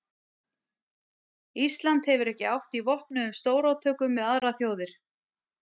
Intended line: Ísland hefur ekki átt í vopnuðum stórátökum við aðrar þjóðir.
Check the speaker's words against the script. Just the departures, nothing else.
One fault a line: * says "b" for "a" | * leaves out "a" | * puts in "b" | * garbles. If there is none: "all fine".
all fine